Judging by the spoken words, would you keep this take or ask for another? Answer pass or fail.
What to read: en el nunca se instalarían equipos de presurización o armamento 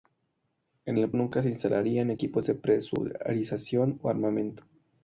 pass